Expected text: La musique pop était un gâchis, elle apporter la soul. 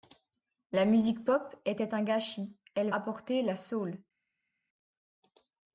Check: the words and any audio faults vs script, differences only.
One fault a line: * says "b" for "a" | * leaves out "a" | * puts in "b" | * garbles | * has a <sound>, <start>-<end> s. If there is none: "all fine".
all fine